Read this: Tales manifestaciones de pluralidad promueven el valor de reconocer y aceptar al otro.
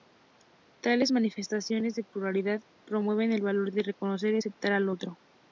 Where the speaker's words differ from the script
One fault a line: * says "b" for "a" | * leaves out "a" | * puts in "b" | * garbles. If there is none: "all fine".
all fine